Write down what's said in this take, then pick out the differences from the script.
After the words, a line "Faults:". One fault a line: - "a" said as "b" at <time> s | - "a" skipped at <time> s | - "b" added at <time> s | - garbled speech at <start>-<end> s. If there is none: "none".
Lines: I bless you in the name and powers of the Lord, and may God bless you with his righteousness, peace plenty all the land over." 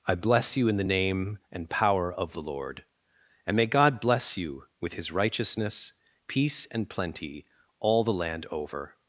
I bless you in the name and power of the Lord, and may God bless you with his righteousness, peace and plenty all the land over."
Faults:
- "powers" said as "power" at 1.7 s
- "and" added at 6.7 s